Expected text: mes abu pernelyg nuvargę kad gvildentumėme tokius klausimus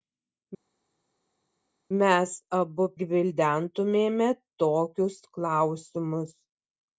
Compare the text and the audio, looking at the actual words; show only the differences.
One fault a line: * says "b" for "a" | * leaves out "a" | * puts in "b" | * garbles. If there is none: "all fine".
* leaves out "pernelyg nuvargę kad"